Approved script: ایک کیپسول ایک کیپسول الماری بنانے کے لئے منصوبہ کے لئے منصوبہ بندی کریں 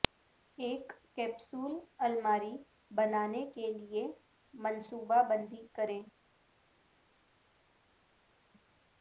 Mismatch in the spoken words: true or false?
true